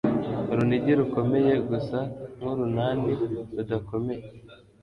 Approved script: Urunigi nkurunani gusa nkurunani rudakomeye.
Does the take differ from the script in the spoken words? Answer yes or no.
yes